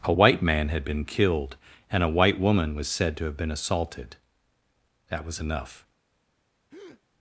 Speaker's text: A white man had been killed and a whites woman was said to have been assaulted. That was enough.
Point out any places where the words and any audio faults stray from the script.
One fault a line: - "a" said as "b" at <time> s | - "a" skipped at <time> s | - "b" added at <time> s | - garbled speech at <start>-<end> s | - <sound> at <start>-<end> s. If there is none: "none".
- "whites" said as "white" at 2.1 s
- breath at 6.7-7.0 s